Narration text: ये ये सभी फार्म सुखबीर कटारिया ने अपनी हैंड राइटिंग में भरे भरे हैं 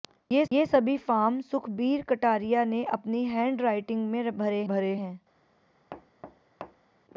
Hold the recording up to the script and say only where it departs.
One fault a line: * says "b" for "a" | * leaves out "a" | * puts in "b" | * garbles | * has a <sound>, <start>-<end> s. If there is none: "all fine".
* has a thud, 5.9-7.0 s